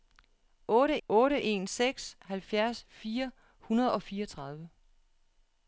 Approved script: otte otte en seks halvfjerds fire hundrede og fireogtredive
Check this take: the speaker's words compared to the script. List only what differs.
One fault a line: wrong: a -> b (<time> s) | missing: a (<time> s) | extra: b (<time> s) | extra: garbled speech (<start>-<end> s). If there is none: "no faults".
no faults